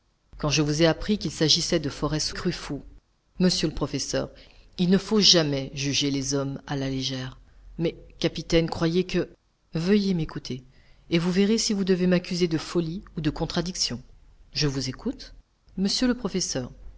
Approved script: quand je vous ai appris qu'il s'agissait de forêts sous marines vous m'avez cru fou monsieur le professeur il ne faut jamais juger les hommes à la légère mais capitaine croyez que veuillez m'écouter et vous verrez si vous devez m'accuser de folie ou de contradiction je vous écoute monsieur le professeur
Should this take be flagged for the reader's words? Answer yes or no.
yes